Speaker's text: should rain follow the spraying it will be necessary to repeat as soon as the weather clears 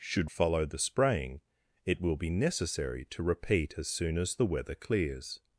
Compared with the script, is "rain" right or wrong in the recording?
wrong